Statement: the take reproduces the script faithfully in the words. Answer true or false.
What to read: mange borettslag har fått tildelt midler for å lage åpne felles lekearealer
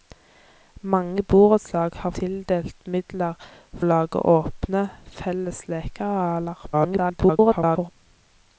false